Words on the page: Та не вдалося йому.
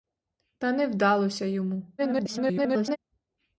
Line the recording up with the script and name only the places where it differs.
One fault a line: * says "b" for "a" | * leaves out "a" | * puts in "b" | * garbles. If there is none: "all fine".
* garbles